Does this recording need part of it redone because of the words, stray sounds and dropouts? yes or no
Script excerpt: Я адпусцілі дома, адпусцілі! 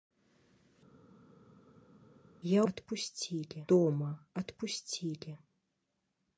no